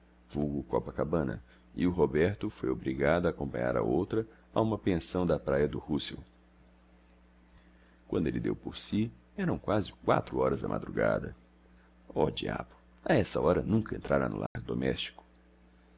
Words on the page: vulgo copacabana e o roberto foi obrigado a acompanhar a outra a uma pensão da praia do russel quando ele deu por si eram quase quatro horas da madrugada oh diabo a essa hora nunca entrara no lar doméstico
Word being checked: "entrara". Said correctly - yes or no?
yes